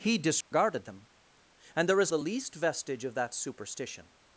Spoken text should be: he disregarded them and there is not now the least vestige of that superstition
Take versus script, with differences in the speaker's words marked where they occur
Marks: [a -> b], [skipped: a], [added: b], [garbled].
he disregarded them and there is [skipped: not now] the least vestige of that superstition